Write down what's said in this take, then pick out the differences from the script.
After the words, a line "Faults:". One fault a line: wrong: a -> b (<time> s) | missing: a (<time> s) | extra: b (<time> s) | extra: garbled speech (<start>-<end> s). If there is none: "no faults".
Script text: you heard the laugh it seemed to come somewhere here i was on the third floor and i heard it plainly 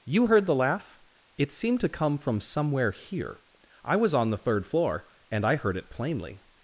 you heard the laugh it seemed to come from somewhere here i was on the third floor and i heard it plainly
Faults:
extra: from (2.2 s)